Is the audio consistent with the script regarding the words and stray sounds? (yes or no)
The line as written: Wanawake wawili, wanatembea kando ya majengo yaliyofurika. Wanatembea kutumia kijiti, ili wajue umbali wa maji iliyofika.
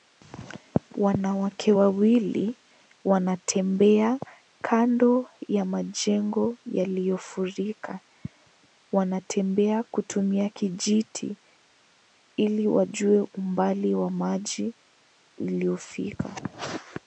yes